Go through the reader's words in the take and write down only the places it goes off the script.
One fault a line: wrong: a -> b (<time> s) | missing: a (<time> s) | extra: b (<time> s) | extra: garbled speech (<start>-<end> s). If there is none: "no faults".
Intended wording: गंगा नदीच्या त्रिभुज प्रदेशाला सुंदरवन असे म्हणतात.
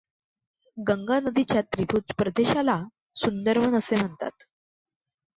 no faults